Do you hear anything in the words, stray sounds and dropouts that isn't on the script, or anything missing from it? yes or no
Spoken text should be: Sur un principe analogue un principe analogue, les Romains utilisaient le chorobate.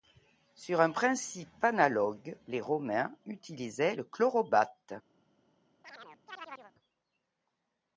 yes